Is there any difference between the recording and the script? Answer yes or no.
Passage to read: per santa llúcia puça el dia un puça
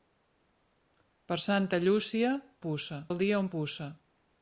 no